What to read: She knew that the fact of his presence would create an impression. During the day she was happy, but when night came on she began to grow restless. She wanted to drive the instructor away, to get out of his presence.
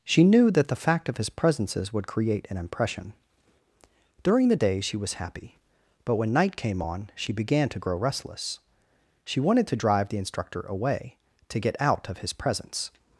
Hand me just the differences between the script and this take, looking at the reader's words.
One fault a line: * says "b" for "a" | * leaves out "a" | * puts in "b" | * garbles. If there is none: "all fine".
* says "presences" for "presence"